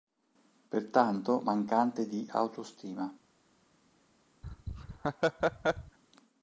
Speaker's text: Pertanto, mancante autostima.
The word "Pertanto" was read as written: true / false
true